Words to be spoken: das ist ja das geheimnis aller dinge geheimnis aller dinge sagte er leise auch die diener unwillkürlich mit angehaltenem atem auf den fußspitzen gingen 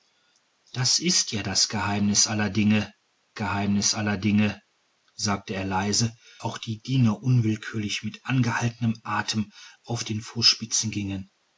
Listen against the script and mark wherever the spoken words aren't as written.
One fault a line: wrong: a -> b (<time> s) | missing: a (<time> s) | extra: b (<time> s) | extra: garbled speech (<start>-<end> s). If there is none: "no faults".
no faults